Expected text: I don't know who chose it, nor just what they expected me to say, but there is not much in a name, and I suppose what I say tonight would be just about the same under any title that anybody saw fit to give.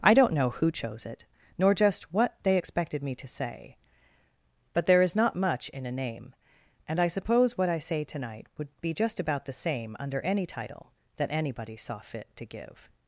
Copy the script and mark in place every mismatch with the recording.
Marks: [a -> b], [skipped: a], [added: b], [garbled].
I don't know who chose it, nor just what they expected me to say, but there is not much in a name, and I suppose what I say tonight would be just about the same under any title that anybody saw fit to give.